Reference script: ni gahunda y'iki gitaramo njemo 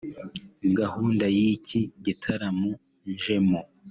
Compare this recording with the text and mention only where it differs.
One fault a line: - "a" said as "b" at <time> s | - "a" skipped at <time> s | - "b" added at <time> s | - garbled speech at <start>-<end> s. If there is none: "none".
none